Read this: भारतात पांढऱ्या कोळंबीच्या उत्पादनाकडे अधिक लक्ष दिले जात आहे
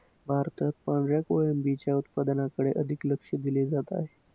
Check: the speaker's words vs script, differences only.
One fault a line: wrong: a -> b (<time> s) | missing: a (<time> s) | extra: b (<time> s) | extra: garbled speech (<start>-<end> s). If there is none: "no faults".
no faults